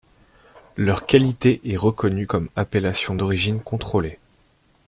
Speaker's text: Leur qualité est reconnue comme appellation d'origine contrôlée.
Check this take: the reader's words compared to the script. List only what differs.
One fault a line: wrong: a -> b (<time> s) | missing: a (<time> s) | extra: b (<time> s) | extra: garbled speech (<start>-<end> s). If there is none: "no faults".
no faults